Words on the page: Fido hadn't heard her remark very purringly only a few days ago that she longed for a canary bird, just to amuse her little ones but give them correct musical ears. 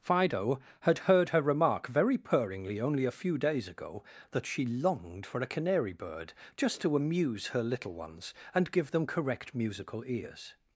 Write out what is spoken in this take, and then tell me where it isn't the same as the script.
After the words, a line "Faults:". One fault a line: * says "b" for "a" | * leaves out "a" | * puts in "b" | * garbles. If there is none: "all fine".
Fido had heard her remark very purringly only a few days ago that she longed for a canary bird, just to amuse her little ones and give them correct musical ears.
Faults:
* says "had" for "hadn't"
* says "and" for "but"